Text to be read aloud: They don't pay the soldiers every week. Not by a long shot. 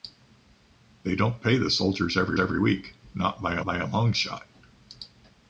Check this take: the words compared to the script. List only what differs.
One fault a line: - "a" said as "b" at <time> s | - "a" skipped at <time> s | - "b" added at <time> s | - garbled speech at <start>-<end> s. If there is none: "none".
- "every" added at 2.4 s
- "by a" added at 3.7 s